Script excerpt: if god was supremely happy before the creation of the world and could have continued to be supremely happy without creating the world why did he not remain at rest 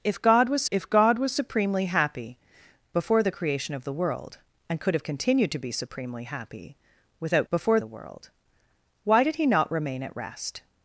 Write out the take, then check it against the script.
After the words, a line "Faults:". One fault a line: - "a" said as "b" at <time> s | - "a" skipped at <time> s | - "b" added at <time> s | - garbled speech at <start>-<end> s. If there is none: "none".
if god was if god was supremely happy before the creation of the world and could have continued to be supremely happy without before the world why did he not remain at rest
Faults:
- "if god was" added at 0.7 s
- "creating" said as "before" at 7.5 s